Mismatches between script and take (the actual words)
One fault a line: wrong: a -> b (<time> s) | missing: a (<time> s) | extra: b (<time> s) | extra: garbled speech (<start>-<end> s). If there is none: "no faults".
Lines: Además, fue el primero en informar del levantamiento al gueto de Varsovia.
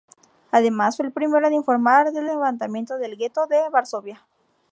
wrong: al -> del (3.0 s)